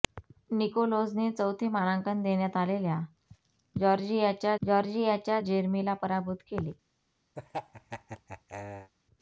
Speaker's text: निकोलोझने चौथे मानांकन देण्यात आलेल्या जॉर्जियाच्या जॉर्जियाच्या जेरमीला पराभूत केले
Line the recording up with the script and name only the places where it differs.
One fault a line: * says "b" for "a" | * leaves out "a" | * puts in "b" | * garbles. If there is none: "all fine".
all fine